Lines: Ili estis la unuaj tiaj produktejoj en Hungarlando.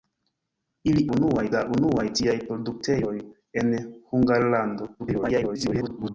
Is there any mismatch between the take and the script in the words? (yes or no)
yes